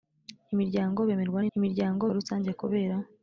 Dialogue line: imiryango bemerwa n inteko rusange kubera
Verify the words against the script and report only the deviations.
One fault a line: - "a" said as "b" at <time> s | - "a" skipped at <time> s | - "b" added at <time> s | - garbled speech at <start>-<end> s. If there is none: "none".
- "inteko" said as "imiryango" at 1.6 s